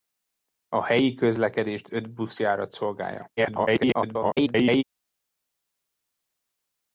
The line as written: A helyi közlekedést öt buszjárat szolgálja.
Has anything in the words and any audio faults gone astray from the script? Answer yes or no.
yes